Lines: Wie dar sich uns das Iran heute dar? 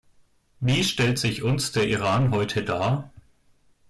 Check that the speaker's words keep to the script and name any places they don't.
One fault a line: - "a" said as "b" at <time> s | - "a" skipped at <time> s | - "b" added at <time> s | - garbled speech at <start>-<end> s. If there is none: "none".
- "dar" said as "stellt" at 0.8 s
- "das" said as "der" at 1.7 s